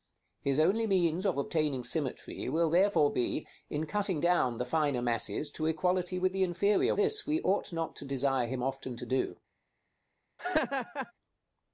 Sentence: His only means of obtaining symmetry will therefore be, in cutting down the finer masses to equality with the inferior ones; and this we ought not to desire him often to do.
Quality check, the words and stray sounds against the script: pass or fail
fail